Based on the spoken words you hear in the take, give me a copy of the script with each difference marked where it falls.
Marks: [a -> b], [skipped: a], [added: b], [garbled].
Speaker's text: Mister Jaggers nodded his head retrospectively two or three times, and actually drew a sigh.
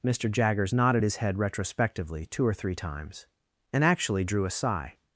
Mister Jaggers nodded his head retrospectively two or three times, and actually drew a sigh.